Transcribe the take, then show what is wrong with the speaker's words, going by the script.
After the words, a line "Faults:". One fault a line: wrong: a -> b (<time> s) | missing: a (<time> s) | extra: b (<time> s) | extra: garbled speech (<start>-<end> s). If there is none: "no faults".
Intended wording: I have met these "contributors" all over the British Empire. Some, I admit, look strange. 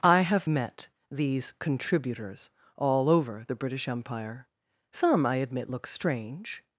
I have met these "contributors" all over the British Empire. Some, I admit, look strange.
Faults:
no faults